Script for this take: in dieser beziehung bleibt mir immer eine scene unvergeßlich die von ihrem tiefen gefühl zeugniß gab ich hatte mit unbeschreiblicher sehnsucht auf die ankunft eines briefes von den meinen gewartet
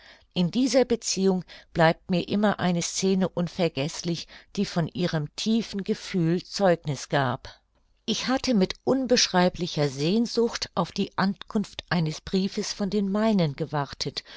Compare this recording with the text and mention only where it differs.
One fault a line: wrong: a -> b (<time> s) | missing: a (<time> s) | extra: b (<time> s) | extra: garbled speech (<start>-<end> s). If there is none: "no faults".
no faults